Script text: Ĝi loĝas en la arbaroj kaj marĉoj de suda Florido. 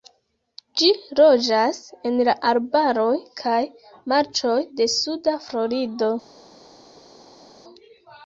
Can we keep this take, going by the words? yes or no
yes